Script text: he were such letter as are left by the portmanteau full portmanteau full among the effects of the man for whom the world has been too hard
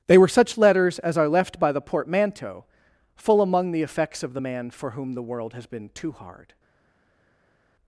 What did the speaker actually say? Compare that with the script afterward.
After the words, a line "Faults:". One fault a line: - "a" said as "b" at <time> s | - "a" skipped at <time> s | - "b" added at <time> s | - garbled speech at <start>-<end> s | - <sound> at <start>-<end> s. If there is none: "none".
they were such letters as are left by the portmanteau full among the effects of the man for whom the world has been too hard
Faults:
- "he" said as "they" at 0.1 s
- "letter" said as "letters" at 0.6 s
- "portmanteau full" skipped at 3.4 s